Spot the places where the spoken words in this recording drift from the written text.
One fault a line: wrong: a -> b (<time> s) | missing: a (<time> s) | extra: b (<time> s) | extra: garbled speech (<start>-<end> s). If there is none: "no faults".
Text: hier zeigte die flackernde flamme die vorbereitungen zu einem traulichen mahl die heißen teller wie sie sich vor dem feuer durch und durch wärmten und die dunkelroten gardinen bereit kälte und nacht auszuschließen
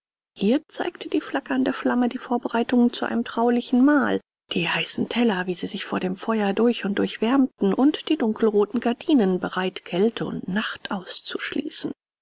no faults